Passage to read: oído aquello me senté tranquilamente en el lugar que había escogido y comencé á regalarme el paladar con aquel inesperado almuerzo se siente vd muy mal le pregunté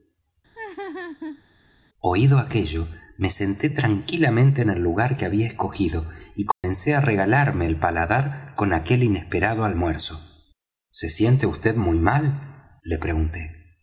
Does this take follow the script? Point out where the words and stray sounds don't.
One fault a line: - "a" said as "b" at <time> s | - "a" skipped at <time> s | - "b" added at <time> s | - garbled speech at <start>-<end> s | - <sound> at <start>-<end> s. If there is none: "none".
- laugh at 0.6-1.4 s
- dropout at 6.5-6.6 s